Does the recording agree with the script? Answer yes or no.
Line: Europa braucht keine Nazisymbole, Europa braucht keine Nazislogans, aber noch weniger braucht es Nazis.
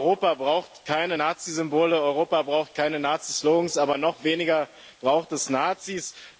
yes